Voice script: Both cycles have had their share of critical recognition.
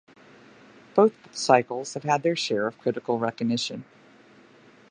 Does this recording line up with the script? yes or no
yes